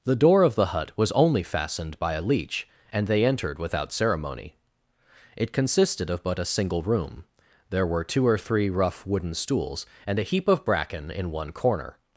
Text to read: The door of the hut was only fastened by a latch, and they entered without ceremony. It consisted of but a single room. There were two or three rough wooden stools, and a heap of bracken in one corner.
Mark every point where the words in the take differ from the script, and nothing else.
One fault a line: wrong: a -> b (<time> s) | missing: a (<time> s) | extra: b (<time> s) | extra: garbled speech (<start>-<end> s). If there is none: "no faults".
wrong: latch -> leech (2.2 s)